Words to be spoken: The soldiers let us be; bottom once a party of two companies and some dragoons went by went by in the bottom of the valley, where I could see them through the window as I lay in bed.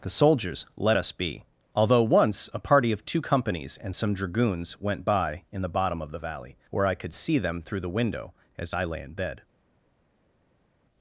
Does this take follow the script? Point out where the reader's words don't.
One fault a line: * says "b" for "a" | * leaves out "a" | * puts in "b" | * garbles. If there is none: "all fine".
* says "although" for "bottom"
* leaves out "went by"